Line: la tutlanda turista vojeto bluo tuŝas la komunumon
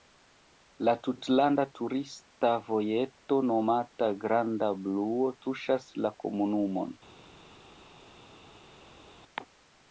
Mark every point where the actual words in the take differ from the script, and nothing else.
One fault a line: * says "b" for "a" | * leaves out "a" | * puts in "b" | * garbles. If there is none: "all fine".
* puts in "nomata granda"